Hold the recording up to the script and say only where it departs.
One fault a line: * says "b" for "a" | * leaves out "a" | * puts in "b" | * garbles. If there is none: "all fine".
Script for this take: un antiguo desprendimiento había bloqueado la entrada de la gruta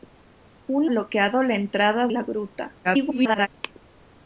* leaves out "antiguo desprendimiento había"
* leaves out "de"
* garbles